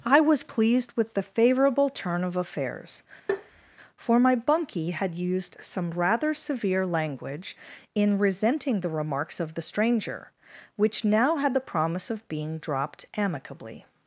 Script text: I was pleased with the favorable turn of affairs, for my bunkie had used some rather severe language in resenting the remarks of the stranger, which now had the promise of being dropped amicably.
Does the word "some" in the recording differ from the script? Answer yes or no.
no